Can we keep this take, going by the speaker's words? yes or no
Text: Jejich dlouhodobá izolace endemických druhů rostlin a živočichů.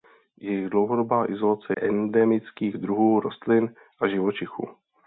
yes